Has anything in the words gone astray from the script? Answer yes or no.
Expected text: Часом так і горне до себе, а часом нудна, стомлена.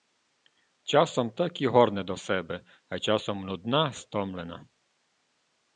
no